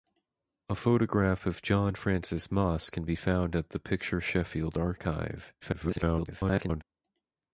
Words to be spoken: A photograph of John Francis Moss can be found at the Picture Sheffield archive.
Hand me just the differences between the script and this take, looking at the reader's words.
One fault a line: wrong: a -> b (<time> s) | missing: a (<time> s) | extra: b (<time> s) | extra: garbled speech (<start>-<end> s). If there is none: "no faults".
extra: garbled speech (5.6-6.8 s)